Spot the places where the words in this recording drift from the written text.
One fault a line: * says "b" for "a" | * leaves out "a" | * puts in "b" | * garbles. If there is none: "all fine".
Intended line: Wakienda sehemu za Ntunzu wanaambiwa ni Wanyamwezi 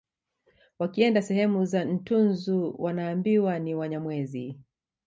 all fine